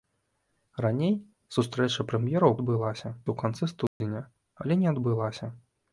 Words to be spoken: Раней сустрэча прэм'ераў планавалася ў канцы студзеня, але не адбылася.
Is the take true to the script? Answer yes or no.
no